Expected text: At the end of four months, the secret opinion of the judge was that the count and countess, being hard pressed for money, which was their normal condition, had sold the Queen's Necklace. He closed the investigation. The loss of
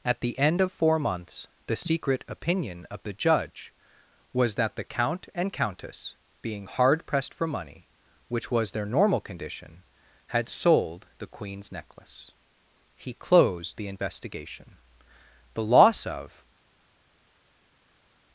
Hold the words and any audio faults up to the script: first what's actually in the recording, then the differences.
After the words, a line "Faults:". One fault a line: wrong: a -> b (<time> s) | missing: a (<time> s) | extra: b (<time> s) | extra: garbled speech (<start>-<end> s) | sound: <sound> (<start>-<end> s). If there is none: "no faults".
At the end of four months, the secret opinion of the judge was that the count and countess, being hard pressed for money, which was their normal condition, had sold the Queen's Necklace. He closed the investigation. The loss of
Faults:
no faults